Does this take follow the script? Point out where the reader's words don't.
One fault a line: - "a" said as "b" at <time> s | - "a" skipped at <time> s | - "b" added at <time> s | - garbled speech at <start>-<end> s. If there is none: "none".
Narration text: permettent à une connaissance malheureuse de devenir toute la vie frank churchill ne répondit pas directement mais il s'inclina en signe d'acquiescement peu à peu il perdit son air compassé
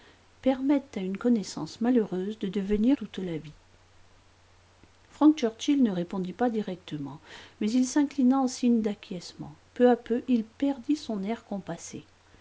none